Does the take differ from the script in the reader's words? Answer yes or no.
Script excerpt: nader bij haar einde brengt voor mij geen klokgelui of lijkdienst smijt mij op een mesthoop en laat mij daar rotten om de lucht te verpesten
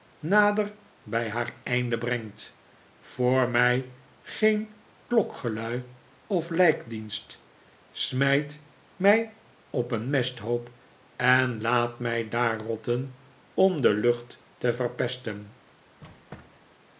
no